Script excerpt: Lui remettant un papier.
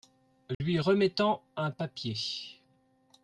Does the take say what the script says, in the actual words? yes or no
yes